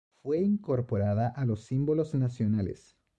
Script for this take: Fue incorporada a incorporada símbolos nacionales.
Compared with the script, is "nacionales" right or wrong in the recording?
right